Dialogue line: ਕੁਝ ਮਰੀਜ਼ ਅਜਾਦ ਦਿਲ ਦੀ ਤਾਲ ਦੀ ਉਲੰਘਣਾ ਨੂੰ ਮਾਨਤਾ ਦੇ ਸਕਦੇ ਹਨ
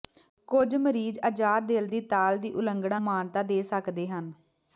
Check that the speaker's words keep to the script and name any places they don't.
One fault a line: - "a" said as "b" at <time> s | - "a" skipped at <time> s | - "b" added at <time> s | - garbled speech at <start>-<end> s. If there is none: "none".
- "ਨੂੰ" skipped at 3.0 s